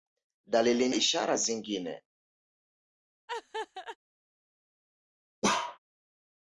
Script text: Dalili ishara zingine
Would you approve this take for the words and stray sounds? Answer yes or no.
no